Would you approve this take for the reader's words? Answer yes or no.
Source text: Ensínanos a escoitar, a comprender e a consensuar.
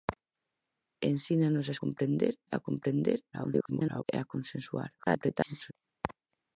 no